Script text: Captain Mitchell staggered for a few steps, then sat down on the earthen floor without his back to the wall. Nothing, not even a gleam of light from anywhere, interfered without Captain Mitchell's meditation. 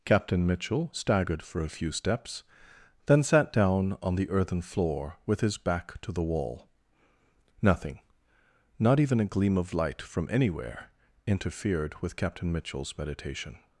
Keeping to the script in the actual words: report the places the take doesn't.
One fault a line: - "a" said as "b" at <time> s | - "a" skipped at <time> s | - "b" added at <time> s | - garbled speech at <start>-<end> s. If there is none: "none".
- "without" said as "with" at 5.2 s
- "without" said as "with" at 12.0 s